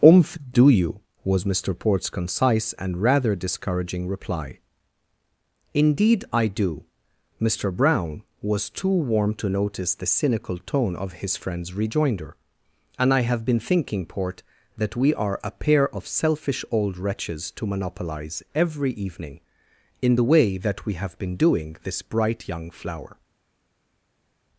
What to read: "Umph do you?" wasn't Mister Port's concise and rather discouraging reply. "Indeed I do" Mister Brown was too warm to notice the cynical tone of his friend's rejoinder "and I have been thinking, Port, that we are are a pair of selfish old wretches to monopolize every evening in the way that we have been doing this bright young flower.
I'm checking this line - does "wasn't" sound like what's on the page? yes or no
no